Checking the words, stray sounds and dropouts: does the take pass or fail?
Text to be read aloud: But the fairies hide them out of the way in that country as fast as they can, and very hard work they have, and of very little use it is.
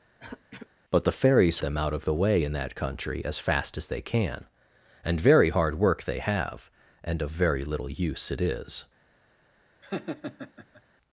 fail